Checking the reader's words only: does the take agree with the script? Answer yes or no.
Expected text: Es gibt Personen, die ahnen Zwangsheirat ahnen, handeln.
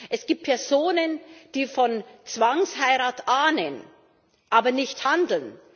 no